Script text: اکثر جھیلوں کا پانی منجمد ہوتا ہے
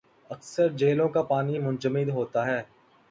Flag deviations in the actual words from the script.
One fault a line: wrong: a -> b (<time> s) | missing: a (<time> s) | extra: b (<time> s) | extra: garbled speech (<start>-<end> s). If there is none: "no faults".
no faults